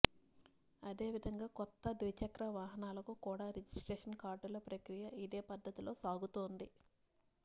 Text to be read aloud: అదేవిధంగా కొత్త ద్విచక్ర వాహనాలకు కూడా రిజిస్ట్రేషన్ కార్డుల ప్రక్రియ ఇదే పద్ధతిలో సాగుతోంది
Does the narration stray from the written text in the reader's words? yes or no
no